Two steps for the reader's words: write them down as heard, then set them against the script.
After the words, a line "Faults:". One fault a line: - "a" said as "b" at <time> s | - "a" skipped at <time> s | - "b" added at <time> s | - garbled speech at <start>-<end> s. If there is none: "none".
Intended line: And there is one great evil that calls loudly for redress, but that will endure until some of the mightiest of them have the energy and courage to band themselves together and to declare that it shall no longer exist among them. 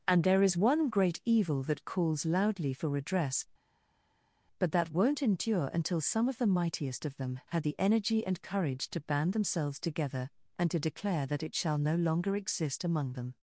And there is one great evil that calls loudly for redress, but that won't endure until some of the mightiest of them had the energy and courage to band themselves together and to declare that it shall no longer exist among them.
Faults:
- "will" said as "won't" at 4.9 s
- "have" said as "had" at 7.5 s